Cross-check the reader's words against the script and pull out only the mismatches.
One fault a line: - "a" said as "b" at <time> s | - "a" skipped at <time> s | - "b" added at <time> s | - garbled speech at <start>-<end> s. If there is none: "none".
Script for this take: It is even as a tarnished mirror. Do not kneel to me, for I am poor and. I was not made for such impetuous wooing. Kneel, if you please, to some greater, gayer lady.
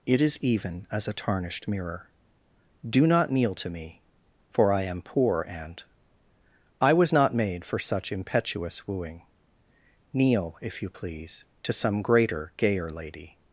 none